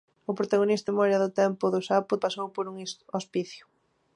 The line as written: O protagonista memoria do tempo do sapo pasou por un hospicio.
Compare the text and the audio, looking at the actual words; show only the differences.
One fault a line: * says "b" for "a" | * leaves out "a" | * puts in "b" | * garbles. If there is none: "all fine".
all fine